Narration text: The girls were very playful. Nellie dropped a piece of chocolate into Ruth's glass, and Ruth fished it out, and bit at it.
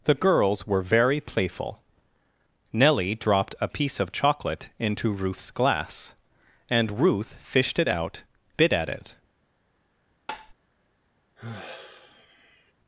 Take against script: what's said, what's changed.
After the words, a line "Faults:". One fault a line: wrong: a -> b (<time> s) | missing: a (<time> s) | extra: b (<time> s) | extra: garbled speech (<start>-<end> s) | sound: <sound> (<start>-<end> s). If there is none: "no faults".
The girls were very playful. Nellie dropped a piece of chocolate into Ruth's glass, and Ruth fished it out, bit at it.
Faults:
missing: and (8.2 s)
sound: tap (10.3-10.5 s)
sound: sigh (11.4-12.7 s)